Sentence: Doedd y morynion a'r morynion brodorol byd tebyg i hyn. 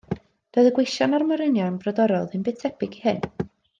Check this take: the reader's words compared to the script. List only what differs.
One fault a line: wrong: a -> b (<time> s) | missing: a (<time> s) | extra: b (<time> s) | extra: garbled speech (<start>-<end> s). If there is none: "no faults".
wrong: morynion -> gweision (0.8 s)
extra: ddim (2.3 s)